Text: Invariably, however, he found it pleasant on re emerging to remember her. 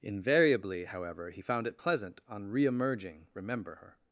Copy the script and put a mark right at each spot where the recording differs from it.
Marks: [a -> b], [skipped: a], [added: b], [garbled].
Invariably, however, he found it pleasant on re emerging [skipped: to] remember her.